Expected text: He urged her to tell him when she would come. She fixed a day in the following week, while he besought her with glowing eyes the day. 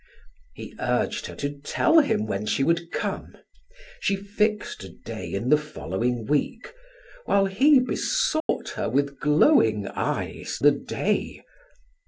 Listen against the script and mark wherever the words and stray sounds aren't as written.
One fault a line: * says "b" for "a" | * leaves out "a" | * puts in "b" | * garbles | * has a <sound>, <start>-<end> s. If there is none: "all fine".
* has a dropout, 8.4-8.5 s